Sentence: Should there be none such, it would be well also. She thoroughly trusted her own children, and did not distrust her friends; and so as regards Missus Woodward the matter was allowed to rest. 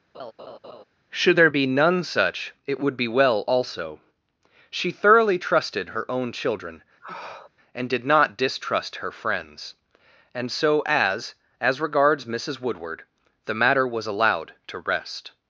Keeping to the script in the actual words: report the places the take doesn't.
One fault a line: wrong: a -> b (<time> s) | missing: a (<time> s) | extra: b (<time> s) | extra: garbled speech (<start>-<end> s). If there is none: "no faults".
extra: as (11.6 s)